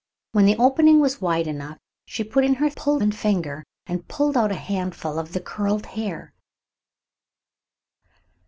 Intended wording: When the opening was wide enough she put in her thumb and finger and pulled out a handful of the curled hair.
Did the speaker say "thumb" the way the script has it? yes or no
no